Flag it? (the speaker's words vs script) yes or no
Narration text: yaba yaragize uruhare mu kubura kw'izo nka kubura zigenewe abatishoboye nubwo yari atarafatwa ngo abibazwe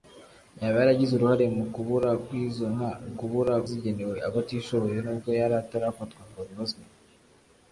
no